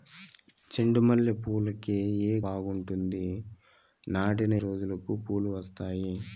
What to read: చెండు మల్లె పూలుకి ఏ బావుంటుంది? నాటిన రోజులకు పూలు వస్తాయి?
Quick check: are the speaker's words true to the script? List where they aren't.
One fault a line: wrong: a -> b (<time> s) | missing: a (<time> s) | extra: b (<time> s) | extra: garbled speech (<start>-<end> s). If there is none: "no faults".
no faults